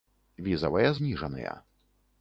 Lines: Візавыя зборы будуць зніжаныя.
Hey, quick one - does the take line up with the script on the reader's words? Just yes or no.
no